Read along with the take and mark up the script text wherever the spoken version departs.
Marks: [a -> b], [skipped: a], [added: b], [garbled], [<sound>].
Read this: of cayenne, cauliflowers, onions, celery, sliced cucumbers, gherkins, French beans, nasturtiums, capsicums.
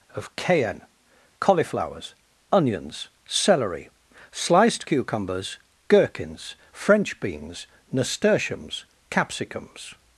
of cayenne, cauliflowers, onions, celery, sliced cucumbers, gherkins, French beans, nasturtiums, capsicums.